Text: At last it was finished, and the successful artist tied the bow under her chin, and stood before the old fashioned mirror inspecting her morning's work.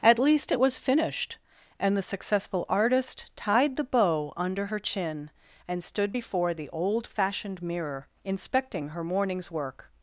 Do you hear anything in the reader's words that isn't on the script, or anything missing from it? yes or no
yes